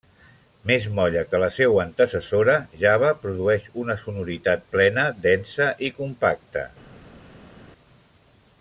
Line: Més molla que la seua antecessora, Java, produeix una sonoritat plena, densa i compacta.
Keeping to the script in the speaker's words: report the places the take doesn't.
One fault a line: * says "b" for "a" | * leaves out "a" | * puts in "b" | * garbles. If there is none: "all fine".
all fine